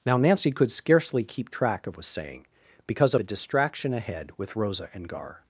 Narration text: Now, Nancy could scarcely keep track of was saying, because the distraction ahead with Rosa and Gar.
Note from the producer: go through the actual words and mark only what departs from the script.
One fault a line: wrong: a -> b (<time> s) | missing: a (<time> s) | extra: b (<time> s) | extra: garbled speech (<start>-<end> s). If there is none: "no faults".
no faults